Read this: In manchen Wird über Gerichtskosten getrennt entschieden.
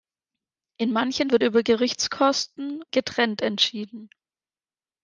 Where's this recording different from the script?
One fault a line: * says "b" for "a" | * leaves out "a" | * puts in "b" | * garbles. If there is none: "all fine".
all fine